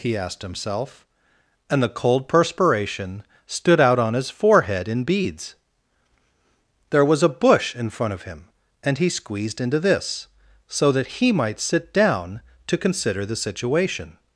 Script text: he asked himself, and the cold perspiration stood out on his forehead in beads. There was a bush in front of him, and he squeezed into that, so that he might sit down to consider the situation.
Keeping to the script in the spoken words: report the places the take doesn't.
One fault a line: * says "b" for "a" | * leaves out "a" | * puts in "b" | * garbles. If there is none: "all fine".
* says "this" for "that"